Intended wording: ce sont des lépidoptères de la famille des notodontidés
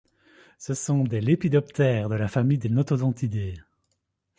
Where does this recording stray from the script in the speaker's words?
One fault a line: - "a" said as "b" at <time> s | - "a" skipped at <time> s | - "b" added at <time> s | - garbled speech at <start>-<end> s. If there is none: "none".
none